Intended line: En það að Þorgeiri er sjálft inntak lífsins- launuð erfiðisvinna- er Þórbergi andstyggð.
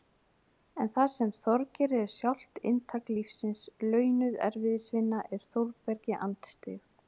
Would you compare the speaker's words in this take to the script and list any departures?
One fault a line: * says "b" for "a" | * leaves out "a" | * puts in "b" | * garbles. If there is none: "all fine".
* says "sem" for "að"